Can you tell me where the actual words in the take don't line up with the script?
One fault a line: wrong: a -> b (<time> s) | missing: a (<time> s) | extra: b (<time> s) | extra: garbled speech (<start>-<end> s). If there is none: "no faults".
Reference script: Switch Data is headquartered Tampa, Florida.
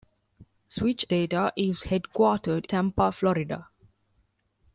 no faults